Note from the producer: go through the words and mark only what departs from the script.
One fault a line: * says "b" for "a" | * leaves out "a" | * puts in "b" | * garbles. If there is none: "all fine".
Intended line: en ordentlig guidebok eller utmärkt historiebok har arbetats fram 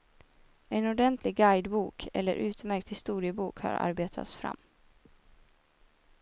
all fine